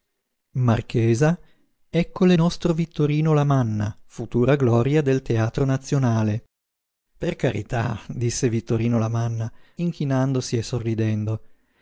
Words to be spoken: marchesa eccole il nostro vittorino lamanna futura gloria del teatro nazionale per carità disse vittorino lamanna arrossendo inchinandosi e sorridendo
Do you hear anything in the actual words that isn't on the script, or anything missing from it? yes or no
yes